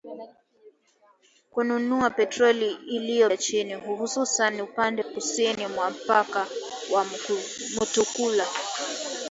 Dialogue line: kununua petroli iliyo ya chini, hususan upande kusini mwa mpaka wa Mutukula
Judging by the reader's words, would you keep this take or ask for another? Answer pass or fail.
pass